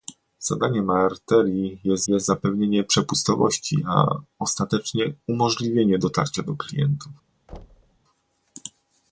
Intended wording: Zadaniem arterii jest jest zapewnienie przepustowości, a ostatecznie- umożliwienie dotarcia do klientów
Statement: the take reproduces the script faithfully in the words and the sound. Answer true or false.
false